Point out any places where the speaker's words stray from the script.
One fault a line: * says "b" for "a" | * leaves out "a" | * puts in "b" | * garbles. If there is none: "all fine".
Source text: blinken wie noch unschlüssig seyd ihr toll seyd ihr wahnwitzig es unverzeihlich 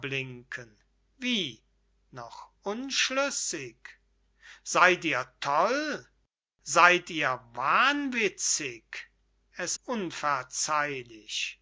all fine